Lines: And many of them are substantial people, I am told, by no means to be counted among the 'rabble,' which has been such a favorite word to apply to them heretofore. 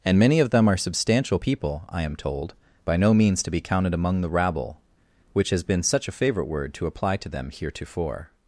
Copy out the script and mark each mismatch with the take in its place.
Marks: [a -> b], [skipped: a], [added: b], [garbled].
And many of them are substantial people, I am told, by no means to be counted among the 'rabble,' which has been such a favorite word to apply to them heretofore.